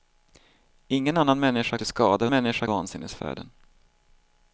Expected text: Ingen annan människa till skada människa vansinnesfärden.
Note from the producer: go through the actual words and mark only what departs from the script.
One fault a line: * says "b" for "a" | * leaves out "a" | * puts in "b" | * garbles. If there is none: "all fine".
all fine